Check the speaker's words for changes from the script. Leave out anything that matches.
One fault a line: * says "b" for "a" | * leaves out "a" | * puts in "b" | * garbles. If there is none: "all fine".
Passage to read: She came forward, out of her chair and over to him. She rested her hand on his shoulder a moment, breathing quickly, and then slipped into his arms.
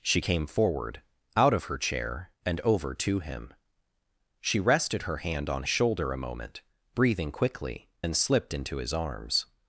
* leaves out "his"
* leaves out "and"